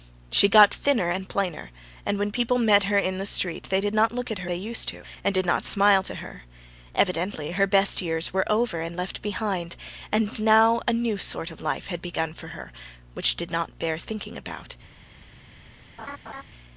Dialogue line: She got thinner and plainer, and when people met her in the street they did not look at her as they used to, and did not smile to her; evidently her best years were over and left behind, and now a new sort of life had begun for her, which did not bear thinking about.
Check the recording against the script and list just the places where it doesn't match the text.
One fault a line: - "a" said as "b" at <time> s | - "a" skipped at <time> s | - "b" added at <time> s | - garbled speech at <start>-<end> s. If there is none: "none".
- "as" skipped at 4.5 s